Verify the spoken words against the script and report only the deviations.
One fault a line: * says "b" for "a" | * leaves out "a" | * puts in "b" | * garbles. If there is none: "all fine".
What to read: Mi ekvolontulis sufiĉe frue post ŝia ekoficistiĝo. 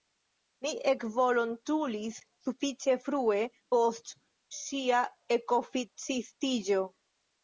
all fine